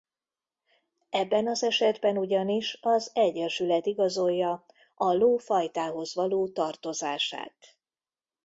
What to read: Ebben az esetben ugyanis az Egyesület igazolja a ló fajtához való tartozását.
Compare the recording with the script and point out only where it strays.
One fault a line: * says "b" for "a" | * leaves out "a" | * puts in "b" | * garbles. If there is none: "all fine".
all fine